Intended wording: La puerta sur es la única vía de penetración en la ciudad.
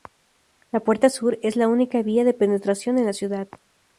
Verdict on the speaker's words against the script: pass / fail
pass